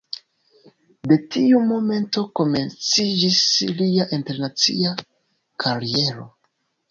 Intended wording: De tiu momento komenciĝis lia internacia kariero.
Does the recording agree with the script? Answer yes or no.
yes